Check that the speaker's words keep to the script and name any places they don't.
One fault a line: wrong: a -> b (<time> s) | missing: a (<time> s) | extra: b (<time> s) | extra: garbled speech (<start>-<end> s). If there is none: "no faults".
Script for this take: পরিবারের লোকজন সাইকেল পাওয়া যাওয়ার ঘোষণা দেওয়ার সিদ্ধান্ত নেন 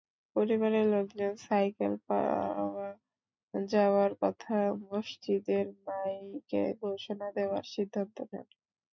extra: কথা মসজিদের মাইকে (4.2 s)